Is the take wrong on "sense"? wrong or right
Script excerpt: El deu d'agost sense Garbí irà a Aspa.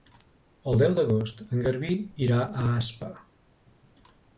wrong